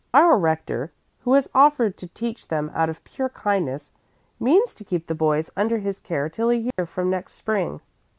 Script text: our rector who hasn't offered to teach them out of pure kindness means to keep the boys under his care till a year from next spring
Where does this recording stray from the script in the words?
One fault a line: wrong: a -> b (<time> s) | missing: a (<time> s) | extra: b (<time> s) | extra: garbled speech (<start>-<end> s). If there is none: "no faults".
wrong: hasn't -> has (1.3 s)